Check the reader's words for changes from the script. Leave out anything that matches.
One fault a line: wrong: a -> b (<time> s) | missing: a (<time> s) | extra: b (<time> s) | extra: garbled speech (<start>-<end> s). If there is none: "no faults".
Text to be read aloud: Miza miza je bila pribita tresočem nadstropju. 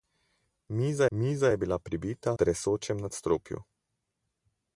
no faults